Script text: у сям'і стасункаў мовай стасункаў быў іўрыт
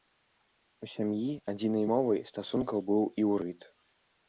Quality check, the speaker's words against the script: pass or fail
fail